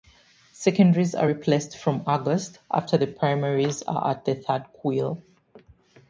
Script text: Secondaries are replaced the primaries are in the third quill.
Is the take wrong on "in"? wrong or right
wrong